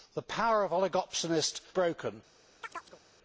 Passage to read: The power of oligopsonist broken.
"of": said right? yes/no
yes